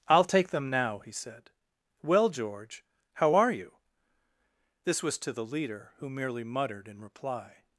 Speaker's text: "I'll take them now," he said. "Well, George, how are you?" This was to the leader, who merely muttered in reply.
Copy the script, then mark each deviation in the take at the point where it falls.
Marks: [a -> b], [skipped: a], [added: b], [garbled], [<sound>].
"I'll take them now," he said. "Well, George, how are you?" This was to the leader, who merely muttered in reply.